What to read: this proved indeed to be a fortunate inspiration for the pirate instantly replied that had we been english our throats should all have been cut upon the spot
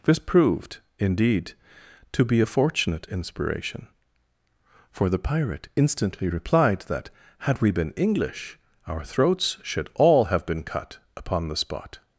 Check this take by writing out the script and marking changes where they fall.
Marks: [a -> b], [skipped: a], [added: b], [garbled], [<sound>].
this proved indeed to be a fortunate inspiration for the pirate instantly replied that had we been english our throats should all have been cut upon the spot